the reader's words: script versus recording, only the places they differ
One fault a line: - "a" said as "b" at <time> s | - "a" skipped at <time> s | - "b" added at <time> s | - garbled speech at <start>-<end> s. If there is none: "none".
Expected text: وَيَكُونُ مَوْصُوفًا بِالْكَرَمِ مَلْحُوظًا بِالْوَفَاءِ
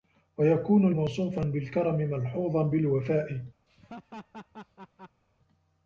none